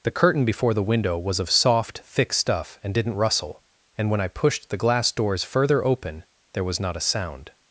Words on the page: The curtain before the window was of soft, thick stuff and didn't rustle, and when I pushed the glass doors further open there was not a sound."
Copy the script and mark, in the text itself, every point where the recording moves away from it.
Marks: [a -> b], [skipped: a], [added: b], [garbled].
The curtain before the window was of soft, thick stuff and didn't rustle, and when I pushed the glass doors further open there was not a sound."